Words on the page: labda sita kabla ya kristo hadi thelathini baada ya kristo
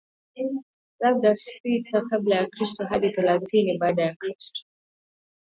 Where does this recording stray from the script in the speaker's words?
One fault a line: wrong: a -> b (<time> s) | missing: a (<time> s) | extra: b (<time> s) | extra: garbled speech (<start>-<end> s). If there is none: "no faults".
no faults